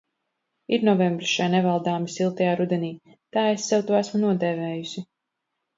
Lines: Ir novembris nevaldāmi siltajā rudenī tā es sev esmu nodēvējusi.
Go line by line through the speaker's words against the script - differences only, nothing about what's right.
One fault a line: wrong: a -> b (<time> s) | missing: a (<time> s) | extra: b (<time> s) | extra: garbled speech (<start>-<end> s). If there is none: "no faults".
extra: šai (1.3 s)
extra: to (3.9 s)